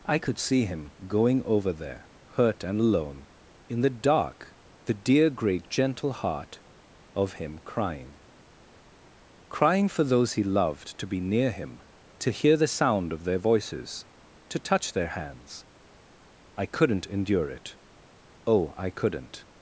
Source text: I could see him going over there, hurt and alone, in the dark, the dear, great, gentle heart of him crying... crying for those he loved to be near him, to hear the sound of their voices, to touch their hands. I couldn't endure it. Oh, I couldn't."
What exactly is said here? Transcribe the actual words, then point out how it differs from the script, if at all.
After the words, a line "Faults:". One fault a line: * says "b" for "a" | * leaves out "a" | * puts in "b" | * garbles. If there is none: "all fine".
I could see him going over there, hurt and alone, in the dark, the dear, great, gentle heart of him crying... crying for those he loved to be near him, to hear the sound of their voices, to touch their hands. I couldn't endure it. Oh, I couldn't."
Faults:
all fine